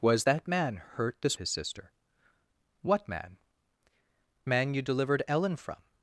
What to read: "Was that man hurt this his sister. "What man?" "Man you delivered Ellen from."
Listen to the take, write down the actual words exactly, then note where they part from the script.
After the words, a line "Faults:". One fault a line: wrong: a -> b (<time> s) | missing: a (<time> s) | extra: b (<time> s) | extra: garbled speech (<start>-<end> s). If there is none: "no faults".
"Was that man hurt this his sister. "What man?" "Man you delivered Ellen from."
Faults:
no faults